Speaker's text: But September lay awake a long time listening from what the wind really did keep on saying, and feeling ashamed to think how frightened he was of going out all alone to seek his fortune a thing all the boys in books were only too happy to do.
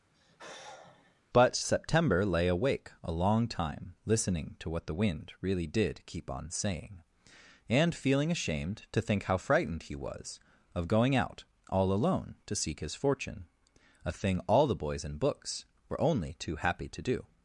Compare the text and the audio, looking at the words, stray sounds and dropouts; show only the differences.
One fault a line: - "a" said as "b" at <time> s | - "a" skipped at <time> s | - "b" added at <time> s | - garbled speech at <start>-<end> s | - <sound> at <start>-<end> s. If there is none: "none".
- sigh at 0.1-1.2 s
- "from" said as "to" at 4.6 s